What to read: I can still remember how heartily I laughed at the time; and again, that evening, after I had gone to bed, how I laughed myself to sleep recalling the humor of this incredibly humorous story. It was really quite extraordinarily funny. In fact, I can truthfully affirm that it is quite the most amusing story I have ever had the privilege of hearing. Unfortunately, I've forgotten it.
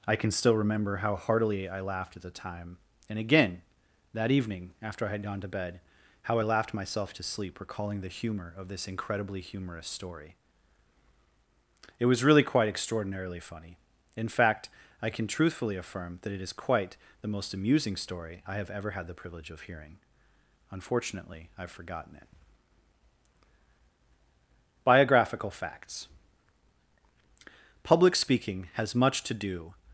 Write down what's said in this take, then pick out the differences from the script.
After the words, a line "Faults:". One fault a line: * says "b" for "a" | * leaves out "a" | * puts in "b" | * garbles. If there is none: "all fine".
I can still remember how heartily I laughed at the time; and again, that evening, after I had gone to bed, how I laughed myself to sleep recalling the humor of this incredibly humorous story. It was really quite extraordinarily funny. In fact, I can truthfully affirm that it is quite the most amusing story I have ever had the privilege of hearing. Unfortunately, I've forgotten it. Biographical Facts Public speaking has much to do
Faults:
* puts in "Biographical Facts Public speaking has much to do"